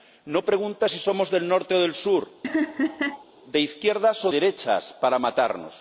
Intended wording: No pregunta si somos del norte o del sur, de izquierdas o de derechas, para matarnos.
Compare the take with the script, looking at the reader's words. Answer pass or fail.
fail